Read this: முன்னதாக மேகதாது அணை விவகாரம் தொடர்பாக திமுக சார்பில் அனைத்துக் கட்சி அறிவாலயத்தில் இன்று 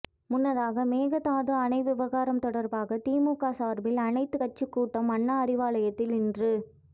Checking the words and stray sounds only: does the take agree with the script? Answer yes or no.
no